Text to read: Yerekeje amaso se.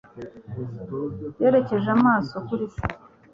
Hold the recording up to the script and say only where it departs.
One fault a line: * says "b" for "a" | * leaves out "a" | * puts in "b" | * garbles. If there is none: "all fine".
* puts in "kuri"